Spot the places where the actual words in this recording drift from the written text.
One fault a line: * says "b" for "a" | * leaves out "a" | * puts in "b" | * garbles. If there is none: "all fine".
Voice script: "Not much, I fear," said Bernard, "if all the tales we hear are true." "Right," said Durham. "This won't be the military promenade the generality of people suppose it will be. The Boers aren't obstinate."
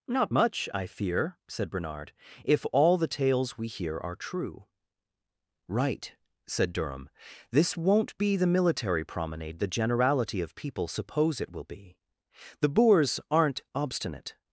all fine